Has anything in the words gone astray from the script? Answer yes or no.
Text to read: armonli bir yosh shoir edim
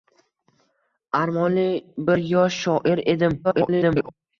yes